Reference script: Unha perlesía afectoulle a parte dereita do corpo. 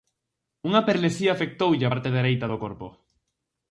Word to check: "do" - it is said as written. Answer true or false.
true